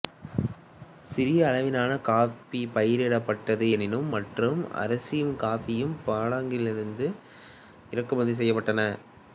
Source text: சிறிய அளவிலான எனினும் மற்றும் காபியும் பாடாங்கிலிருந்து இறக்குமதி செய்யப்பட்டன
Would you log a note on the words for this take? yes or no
yes